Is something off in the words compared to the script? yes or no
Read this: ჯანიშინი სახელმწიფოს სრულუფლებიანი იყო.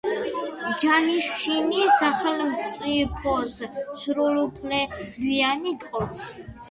no